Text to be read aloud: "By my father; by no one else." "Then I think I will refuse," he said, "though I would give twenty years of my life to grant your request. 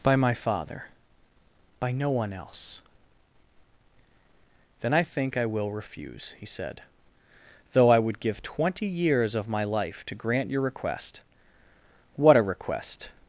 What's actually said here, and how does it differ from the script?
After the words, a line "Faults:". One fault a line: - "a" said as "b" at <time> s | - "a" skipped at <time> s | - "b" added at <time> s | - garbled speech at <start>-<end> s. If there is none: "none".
"By my father; by no one else." "Then I think I will refuse," he said, "though I would give twenty years of my life to grant your request. What a request
Faults:
- "What a request" added at 12.2 s